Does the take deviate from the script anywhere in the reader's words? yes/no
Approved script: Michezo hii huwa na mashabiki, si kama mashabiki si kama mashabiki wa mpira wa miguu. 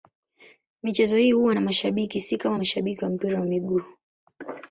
yes